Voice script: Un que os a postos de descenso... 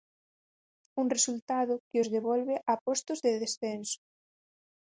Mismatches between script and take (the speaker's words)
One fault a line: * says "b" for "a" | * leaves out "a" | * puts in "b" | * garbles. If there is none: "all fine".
* puts in "resultado"
* puts in "devolve"